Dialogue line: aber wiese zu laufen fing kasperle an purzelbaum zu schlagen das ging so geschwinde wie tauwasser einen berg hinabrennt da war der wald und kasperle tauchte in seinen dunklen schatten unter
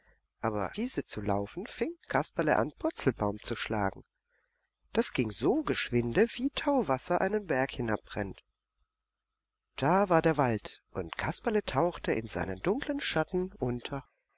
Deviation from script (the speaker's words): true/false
false